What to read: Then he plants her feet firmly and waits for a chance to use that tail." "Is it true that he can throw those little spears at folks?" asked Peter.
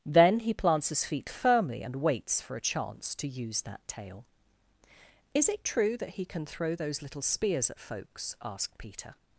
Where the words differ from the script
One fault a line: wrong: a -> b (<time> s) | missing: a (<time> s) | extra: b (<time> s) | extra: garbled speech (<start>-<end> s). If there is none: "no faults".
wrong: her -> his (0.9 s)